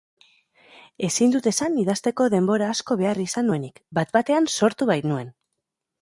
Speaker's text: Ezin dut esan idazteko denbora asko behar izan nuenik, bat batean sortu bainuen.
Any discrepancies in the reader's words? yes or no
no